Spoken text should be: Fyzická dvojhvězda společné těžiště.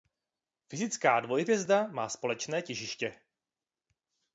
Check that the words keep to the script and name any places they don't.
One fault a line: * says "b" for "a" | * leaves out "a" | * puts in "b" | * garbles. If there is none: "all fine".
* puts in "má"